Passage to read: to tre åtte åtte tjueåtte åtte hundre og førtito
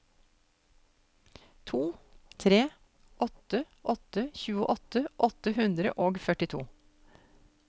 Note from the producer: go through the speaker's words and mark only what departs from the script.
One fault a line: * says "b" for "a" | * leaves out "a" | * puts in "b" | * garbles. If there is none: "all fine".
all fine